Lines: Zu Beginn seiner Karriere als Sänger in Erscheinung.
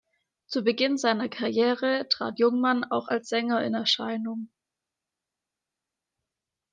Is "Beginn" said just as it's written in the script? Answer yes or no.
yes